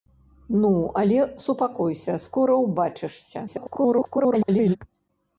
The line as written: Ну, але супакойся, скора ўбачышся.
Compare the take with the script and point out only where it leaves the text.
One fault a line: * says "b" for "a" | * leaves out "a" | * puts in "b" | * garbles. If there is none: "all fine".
* garbles